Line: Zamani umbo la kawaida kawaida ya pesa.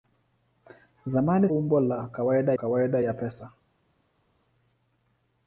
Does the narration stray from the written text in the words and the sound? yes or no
no